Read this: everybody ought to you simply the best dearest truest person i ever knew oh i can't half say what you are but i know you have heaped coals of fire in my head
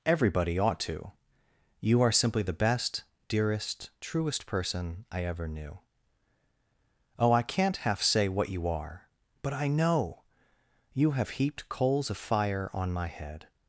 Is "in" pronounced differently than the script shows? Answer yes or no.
yes